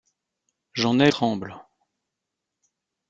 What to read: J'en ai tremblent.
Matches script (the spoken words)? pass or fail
pass